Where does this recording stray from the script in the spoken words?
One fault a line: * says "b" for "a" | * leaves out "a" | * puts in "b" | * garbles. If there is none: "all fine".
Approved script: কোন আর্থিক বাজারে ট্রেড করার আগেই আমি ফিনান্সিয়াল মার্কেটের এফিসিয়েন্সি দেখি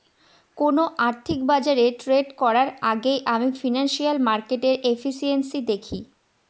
all fine